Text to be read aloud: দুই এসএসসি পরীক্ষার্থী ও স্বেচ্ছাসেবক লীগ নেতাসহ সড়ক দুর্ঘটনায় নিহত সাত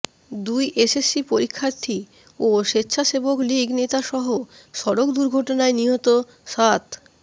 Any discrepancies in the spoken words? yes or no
no